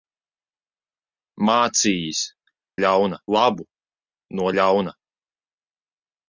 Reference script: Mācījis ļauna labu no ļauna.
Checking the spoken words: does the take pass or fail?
pass